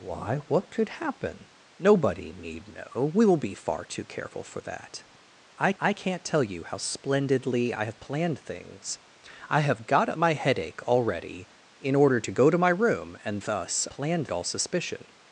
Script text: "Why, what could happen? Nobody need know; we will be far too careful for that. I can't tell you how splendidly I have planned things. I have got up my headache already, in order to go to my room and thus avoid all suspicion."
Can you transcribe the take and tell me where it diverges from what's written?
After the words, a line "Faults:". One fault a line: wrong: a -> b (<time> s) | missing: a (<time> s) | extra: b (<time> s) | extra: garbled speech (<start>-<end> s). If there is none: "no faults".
"Why, what could happen? Nobody need know; we will be far too careful for that. I I can't tell you how splendidly I have planned things. I have got up my headache already, in order to go to my room and thus planned all suspicion."
Faults:
extra: I (5.8 s)
wrong: avoid -> planned (13.9 s)